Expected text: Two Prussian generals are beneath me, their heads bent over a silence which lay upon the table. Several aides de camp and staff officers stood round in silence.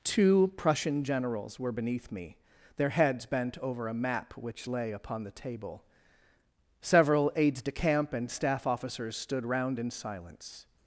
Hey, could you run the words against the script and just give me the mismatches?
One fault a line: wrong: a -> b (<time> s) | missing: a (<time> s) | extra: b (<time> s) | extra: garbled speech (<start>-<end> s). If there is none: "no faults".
wrong: are -> were (1.6 s)
wrong: silence -> map (3.9 s)